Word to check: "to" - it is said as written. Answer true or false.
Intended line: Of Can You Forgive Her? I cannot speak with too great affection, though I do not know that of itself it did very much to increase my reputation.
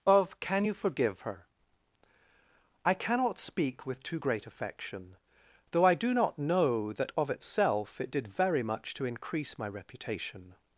true